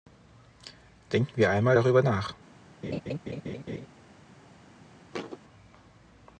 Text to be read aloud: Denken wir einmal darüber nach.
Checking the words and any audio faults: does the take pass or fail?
fail